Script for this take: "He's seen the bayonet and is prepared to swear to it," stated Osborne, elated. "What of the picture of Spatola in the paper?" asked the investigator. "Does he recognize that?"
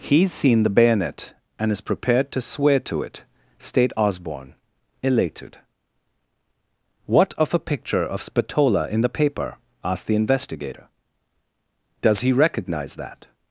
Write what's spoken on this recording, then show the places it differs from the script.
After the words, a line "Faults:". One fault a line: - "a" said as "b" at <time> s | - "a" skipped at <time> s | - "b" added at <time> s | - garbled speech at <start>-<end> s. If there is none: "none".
"He's seen the bayonet and is prepared to swear to it," state Osborne, elated. "What of a picture of Spatola in the paper?" asked the investigator. "Does he recognize that?"
Faults:
- "stated" said as "state" at 3.6 s
- "the" said as "a" at 7.5 s